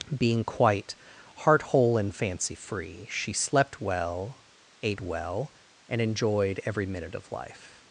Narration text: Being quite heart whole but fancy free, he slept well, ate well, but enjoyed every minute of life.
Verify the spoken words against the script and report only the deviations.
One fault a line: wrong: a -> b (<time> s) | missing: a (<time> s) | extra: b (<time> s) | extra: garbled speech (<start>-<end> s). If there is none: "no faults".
wrong: but -> and (2.0 s)
wrong: he -> she (3.1 s)
wrong: but -> and (5.9 s)